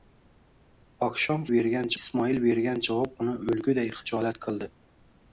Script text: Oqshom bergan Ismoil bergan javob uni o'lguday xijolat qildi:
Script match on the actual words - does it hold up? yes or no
yes